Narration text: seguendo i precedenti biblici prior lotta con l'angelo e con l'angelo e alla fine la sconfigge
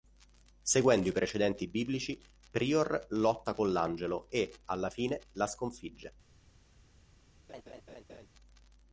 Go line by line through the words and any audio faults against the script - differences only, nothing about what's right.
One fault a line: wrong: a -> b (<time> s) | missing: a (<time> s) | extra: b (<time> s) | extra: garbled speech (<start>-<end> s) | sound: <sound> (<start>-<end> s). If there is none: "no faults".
missing: con l'angelo e (4.5 s)
sound: laugh (7.5-8.3 s)